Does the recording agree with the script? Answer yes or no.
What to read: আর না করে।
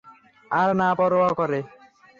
no